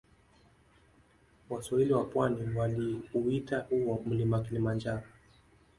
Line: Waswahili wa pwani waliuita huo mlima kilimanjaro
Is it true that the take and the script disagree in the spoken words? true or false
false